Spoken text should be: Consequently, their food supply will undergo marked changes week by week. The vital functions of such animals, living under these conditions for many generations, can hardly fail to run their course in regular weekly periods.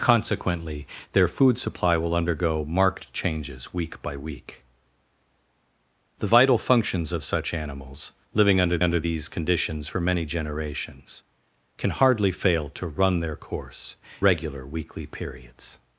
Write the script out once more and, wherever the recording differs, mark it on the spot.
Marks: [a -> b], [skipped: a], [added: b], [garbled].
Consequently, their food supply will undergo marked changes week by week. The vital functions of such animals, living under [added: under] these conditions for many generations, can hardly fail to run their course [skipped: in] regular weekly periods.